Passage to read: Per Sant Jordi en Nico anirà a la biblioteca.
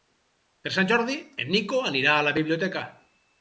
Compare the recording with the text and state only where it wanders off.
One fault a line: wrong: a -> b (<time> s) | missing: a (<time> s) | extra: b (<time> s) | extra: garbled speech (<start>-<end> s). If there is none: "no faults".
no faults